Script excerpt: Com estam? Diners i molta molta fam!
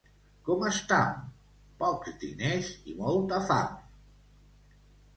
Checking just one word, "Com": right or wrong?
right